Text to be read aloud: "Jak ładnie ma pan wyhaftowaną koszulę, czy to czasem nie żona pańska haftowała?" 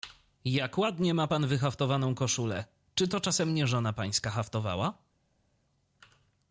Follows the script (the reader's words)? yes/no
yes